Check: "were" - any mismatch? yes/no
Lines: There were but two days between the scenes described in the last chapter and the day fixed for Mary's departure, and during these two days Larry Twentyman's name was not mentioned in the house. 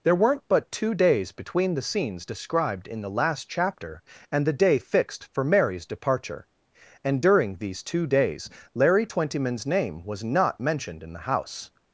yes